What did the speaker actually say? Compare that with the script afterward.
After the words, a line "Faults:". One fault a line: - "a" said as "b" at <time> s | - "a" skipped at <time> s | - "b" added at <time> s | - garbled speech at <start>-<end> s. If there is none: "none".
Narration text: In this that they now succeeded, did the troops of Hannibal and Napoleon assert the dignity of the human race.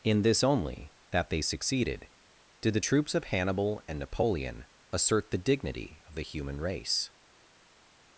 In this only, that they succeeded, did the troops of Hannibal and Napoleon assert the dignity of the human race.
Faults:
- "only" added at 0.4 s
- "now" skipped at 1.4 s